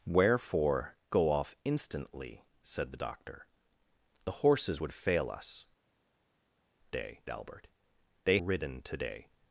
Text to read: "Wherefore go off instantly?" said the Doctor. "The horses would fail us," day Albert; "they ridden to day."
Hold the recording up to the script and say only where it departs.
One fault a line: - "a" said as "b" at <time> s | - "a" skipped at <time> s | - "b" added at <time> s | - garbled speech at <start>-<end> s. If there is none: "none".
none